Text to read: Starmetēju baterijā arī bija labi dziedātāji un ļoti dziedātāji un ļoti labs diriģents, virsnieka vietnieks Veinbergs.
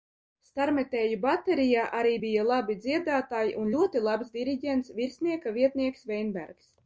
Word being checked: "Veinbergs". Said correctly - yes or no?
yes